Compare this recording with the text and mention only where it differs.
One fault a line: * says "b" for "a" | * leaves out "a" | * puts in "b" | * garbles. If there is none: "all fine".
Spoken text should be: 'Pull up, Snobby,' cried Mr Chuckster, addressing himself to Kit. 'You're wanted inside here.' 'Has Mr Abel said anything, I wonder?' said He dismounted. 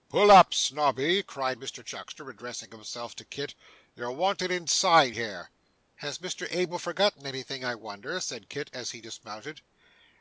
* says "forgotten" for "said"
* puts in "Kit as"